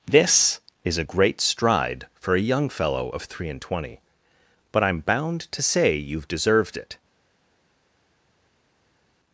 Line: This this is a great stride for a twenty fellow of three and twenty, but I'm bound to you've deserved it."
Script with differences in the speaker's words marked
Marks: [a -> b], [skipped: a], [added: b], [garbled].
This [skipped: this] is a great stride for a [twenty -> young] fellow of three and twenty, but I'm bound to [added: say] you've deserved it."